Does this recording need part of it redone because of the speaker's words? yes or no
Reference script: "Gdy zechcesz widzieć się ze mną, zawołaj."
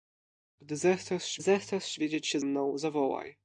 yes